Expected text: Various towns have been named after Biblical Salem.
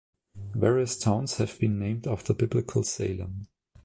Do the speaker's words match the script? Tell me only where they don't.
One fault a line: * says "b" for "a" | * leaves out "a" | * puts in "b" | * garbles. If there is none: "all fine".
all fine